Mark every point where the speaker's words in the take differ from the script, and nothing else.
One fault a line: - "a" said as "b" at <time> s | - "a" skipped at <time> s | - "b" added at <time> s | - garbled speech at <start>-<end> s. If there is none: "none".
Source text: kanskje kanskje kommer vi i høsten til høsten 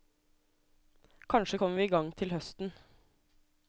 - "kanskje" skipped at 1.6 s
- "høsten" said as "gang" at 1.9 s